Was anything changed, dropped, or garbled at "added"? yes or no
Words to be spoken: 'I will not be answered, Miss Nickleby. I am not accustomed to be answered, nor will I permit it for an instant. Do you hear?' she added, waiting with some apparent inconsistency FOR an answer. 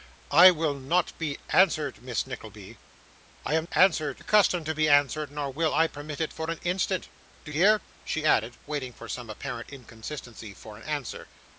no